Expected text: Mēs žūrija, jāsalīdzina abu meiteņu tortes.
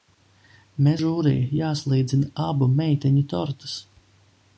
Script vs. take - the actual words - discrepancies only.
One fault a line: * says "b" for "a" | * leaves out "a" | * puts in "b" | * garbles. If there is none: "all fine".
all fine